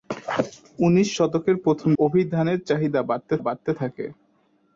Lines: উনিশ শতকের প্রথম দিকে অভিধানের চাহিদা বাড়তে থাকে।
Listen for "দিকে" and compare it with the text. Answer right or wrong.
wrong